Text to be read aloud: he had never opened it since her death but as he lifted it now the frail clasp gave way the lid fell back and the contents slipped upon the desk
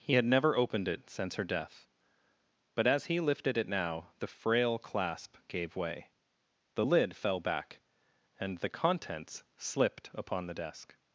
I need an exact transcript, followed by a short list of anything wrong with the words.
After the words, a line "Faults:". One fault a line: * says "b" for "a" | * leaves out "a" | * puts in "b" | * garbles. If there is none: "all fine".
he had never opened it since her death but as he lifted it now the frail clasp gave way the lid fell back and the contents slipped upon the desk
Faults:
all fine